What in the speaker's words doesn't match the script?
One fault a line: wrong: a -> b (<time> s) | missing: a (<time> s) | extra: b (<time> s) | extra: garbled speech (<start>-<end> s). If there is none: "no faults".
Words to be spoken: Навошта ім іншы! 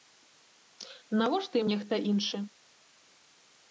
extra: нехта (1.7 s)